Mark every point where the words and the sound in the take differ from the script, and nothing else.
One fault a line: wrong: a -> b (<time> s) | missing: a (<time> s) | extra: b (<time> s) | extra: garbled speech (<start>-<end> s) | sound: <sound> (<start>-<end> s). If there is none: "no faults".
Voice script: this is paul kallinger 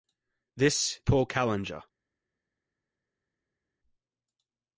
missing: is (1.0 s)